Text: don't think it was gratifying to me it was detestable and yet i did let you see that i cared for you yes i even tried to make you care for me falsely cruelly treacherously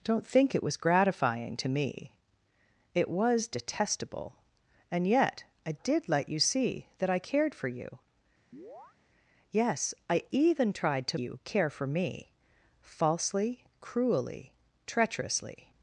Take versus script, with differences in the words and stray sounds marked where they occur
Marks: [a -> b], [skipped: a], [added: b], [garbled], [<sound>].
don't think it was gratifying to me it was detestable and yet i did let you see that i cared for you [chirp] yes i even tried to [skipped: make] you care for me falsely cruelly treacherously